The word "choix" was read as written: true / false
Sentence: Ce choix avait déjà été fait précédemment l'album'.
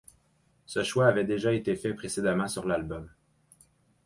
true